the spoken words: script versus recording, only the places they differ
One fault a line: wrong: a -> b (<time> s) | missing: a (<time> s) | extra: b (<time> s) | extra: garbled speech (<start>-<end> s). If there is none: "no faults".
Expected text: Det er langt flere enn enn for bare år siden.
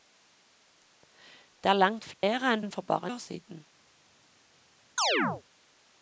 no faults